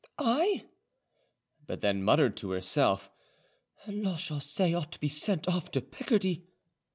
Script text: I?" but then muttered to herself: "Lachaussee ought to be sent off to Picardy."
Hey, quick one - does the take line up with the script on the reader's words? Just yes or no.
yes